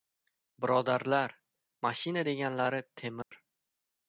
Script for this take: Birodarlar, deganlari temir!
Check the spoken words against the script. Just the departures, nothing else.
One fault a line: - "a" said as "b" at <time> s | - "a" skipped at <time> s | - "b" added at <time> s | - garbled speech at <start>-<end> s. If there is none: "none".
- "mashina" added at 1.9 s